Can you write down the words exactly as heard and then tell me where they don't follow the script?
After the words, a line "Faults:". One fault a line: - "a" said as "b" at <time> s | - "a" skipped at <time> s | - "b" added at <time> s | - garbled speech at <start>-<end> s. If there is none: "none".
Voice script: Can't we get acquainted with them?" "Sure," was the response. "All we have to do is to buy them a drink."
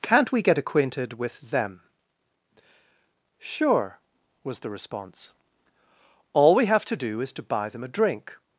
Can't we get acquainted with them?" "Sure," was the response. "All we have to do is to buy them a drink."
Faults:
none